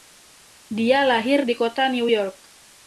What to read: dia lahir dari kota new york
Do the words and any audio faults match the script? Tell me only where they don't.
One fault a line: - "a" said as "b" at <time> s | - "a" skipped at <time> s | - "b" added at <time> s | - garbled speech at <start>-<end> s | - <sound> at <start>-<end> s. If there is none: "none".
- "dari" said as "di" at 1.4 s